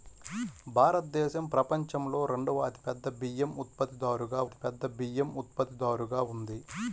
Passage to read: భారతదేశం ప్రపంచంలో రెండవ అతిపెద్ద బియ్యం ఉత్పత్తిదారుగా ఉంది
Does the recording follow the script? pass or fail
fail